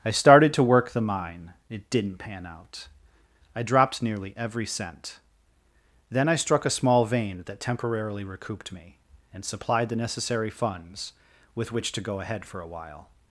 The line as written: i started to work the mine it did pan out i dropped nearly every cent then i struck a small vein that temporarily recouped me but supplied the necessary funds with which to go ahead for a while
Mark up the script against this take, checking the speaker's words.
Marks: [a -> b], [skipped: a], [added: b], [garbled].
i started to work the mine it [did -> didn't] pan out i dropped nearly every cent then i struck a small vein that temporarily recouped me [but -> and] supplied the necessary funds with which to go ahead for a while